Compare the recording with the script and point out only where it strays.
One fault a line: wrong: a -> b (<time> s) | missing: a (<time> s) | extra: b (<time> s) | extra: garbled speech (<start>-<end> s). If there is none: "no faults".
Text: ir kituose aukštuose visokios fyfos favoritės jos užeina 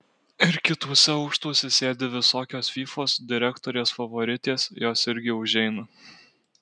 extra: sėdi (1.8 s)
extra: direktorės (3.3 s)
extra: irgi (5.1 s)